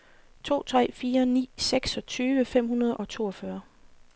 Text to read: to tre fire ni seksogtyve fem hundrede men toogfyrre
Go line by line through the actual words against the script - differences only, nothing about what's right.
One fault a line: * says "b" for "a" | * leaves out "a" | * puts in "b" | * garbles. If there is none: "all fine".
* says "og" for "men"